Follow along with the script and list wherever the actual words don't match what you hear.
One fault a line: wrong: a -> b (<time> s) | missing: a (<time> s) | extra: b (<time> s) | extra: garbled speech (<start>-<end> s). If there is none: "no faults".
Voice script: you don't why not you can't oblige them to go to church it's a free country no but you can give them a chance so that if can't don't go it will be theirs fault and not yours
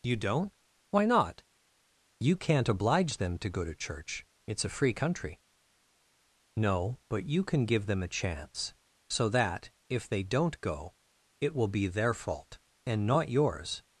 wrong: can't -> they (10.1 s)
wrong: theirs -> their (11.8 s)